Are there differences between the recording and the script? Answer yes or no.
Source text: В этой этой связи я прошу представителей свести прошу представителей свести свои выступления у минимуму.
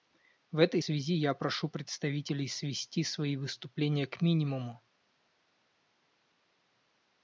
yes